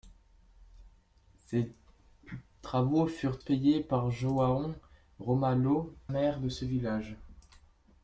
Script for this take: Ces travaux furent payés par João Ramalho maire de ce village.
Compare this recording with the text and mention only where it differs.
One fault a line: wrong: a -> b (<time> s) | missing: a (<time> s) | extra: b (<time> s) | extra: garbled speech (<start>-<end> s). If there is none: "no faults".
no faults